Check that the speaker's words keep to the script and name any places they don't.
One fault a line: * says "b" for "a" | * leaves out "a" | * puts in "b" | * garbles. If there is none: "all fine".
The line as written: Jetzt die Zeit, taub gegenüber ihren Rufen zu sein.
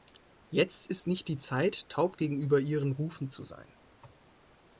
* puts in "ist nicht"